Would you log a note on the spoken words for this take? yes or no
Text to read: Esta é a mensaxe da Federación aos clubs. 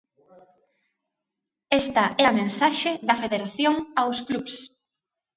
no